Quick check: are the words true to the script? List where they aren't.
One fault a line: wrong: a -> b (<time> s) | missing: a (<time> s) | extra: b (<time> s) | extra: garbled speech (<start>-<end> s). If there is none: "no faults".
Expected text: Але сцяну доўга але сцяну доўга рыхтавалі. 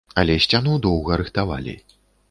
missing: але сцяну доўга (1.2 s)